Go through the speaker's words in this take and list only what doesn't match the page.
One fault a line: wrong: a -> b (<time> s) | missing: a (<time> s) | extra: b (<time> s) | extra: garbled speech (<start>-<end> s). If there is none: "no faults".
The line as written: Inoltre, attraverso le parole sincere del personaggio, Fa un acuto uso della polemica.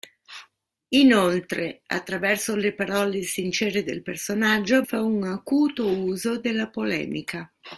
no faults